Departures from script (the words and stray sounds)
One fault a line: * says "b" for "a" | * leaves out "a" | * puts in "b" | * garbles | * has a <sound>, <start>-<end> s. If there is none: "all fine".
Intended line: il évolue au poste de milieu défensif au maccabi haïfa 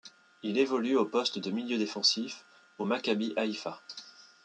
all fine